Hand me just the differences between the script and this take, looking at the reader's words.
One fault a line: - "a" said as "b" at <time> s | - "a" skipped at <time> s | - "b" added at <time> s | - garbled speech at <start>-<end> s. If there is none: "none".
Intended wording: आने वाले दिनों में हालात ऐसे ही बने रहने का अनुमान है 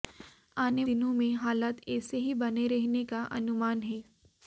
- "वाले" skipped at 0.8 s